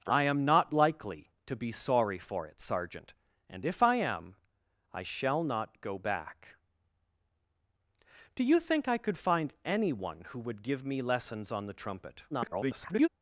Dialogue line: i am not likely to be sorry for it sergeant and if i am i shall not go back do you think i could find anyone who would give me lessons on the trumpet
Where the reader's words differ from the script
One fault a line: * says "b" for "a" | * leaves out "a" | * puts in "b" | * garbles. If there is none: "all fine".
* garbles